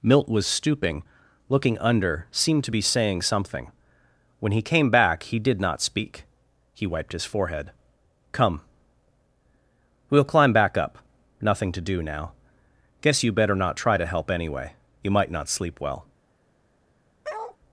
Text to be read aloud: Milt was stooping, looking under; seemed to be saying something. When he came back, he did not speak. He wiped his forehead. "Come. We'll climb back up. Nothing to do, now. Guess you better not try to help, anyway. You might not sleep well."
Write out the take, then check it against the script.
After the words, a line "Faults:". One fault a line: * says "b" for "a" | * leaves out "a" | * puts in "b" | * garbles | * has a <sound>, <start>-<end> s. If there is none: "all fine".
Milt was stooping, looking under; seemed to be saying something. When he came back, he did not speak. He wiped his forehead. "Come. We'll climb back up. Nothing to do, now. Guess you better not try to help, anyway. You might not sleep well."
Faults:
* has a bark, 17.2-17.6 s